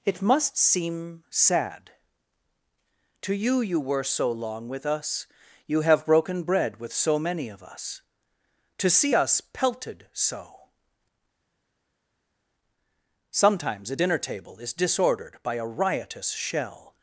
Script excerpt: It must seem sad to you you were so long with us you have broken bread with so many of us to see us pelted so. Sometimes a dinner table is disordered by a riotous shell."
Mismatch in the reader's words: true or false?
false